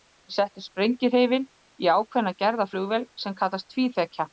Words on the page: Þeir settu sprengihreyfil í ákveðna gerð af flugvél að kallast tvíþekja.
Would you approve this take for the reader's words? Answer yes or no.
no